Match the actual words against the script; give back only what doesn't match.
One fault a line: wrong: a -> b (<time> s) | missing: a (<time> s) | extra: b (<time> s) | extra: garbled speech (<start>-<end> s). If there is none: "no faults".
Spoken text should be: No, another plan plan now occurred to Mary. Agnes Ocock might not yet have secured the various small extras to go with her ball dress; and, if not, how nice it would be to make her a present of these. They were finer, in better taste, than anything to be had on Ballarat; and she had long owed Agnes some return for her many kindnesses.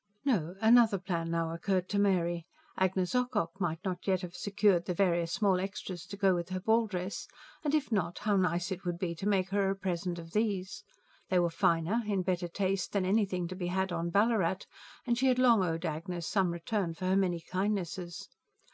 missing: plan (1.3 s)